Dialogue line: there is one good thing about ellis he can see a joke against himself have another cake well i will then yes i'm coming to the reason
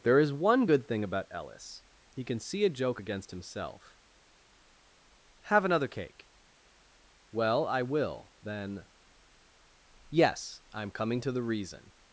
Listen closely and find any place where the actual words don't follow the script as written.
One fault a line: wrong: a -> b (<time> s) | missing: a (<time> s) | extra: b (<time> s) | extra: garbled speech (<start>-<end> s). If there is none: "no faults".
no faults